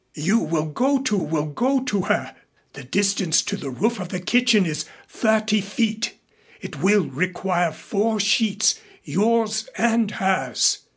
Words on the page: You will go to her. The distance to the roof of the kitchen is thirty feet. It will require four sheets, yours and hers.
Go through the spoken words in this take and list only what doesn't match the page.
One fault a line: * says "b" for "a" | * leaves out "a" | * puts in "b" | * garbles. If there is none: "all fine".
* puts in "will go to"